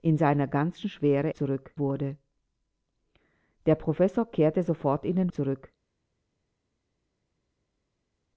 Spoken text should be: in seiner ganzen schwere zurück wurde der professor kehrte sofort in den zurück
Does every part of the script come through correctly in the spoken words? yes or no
yes